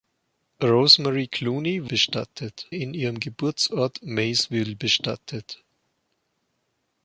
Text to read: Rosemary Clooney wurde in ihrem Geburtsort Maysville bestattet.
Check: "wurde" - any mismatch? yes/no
yes